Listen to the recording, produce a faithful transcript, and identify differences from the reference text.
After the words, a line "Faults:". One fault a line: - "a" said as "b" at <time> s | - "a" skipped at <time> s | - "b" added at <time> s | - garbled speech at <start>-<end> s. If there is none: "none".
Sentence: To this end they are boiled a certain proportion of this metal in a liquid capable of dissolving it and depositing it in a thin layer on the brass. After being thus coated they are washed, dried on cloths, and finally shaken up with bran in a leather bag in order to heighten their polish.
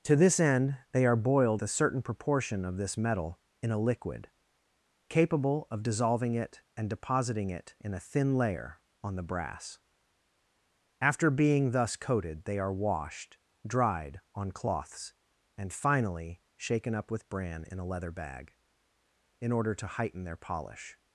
To this end they are boiled a certain proportion of this metal in a liquid capable of dissolving it and depositing it in a thin layer on the brass. After being thus coated they are washed, dried on cloths, and finally shaken up with bran in a leather bag in order to heighten their polish.
Faults:
none